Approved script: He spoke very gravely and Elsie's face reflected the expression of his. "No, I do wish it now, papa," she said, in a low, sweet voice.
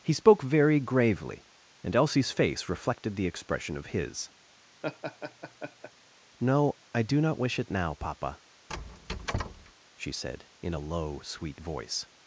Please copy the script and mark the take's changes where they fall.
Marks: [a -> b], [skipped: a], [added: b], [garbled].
He spoke very gravely and Elsie's face reflected the expression of his. "No, I do [added: not] wish it now, papa," she said, in a low, sweet voice.